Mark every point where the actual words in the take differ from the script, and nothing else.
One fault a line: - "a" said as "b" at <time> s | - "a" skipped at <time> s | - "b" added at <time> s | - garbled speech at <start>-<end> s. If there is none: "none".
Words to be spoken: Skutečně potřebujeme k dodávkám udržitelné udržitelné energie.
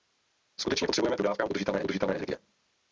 none